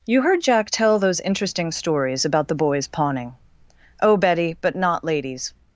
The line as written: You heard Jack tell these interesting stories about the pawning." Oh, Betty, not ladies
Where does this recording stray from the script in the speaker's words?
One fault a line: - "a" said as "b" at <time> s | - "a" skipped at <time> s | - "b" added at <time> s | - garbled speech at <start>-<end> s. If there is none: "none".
- "these" said as "those" at 1.0 s
- "boys" added at 2.5 s
- "but" added at 4.6 s